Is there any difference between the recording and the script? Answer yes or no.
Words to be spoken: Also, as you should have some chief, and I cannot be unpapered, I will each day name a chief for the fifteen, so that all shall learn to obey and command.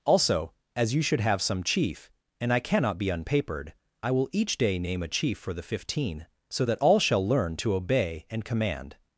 no